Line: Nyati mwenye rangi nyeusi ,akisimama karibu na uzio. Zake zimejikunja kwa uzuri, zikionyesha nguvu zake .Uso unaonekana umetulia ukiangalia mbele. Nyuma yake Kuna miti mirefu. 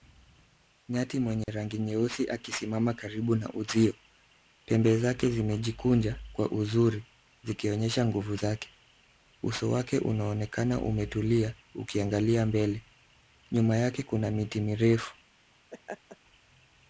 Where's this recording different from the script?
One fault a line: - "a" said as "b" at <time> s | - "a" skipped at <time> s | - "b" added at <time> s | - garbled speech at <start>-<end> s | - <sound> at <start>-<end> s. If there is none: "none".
- dropout at 1.4-1.5 s
- "Pembe" added at 4.7 s
- "wake" added at 9.7 s
- laugh at 15.7-16.2 s